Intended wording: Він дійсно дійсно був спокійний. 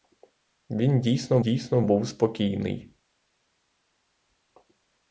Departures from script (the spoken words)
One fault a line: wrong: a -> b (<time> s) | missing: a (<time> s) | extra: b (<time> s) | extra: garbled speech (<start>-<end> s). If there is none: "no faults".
no faults